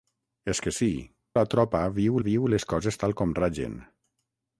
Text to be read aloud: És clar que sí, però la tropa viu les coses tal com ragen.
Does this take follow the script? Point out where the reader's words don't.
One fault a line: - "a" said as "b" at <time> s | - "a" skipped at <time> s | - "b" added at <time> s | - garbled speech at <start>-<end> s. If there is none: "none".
- "clar" skipped at 0.6 s
- "però" skipped at 0.9 s
- "viu" added at 2.3 s